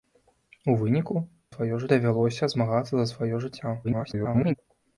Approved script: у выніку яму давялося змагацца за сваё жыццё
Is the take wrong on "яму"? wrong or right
wrong